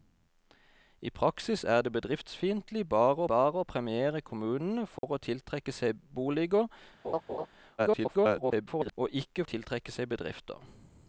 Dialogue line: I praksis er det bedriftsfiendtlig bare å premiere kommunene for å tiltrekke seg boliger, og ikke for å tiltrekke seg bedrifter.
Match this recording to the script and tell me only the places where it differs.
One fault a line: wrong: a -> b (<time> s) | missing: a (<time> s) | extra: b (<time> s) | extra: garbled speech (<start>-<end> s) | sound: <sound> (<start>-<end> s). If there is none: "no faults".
extra: bare (3.3 s)
sound: dropout (5.0-5.0 s)
sound: laugh (7.0-7.5 s)
extra: garbled speech (7.8-8.9 s)
missing: for (9.4 s)